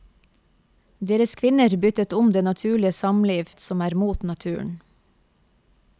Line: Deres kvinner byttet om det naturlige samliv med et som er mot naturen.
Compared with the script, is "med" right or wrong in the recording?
wrong